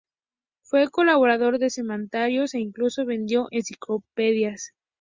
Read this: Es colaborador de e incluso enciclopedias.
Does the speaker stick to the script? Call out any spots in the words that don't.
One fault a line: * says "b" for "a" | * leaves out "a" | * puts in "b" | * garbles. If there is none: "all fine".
* says "Fue" for "Es"
* puts in "semanarios"
* puts in "vendió"